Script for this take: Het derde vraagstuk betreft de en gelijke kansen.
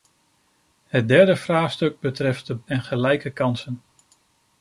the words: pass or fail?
pass